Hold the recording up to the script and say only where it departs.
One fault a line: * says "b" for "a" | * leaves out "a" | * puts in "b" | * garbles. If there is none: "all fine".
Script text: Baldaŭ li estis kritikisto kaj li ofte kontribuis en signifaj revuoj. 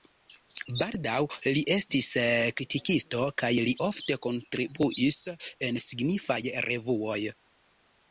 all fine